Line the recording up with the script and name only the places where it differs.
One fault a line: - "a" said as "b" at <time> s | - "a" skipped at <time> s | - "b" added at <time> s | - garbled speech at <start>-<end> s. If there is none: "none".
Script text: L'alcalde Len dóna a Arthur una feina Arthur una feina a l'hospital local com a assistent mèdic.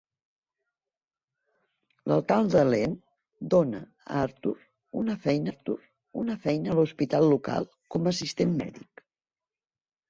none